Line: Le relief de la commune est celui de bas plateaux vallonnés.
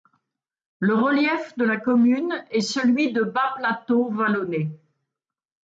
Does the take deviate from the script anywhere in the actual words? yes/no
no